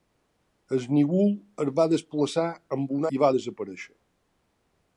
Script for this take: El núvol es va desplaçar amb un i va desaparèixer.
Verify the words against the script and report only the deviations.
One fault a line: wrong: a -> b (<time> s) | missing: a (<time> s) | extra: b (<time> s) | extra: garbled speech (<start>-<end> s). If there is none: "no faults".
no faults